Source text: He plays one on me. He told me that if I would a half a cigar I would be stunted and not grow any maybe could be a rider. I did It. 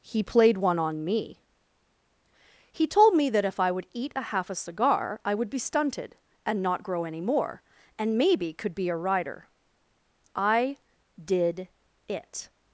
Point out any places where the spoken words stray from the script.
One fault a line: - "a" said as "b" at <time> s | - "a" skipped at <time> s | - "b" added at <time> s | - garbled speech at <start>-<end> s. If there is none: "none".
- "plays" said as "played" at 0.2 s
- "eat" added at 3.9 s
- "more and" added at 7.2 s